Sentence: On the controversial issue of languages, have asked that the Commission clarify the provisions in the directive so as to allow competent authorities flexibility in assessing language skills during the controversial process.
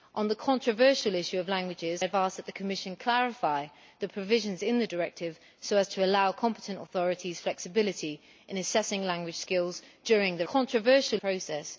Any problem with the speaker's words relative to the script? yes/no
no